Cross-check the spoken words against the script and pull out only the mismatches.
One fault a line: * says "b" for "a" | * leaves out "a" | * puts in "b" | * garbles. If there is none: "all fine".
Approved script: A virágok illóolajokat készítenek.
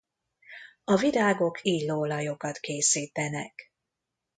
all fine